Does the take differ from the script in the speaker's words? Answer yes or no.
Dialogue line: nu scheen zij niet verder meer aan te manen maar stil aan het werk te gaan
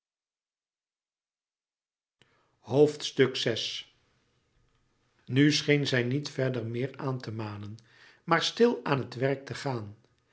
no